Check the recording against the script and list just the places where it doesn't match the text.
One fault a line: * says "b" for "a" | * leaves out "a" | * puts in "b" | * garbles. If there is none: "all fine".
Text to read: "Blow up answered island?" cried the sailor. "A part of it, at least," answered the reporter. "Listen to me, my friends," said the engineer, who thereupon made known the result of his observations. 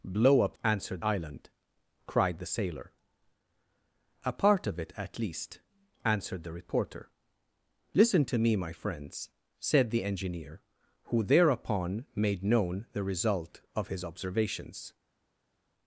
all fine